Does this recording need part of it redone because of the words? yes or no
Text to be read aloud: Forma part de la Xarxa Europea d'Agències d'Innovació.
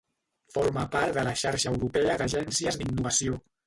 no